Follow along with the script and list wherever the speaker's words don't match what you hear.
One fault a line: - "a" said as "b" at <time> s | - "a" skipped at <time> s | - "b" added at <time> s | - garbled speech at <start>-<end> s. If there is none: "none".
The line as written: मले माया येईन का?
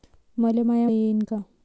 none